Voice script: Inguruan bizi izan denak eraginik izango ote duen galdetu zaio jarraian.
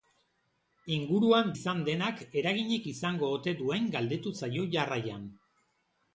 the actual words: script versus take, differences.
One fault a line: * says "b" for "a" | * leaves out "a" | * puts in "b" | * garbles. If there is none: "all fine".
* leaves out "bizi"